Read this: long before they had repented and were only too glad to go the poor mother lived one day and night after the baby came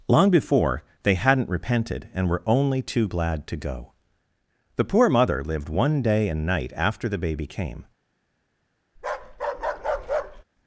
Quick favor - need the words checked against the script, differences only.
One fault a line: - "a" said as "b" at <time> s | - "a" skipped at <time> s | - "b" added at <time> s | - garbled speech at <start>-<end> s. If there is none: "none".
- "had" said as "hadn't" at 1.1 s